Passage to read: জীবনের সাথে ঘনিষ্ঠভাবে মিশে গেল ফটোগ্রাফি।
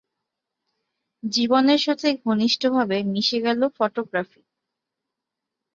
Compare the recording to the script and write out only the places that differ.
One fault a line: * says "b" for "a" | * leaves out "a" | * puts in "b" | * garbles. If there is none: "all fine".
all fine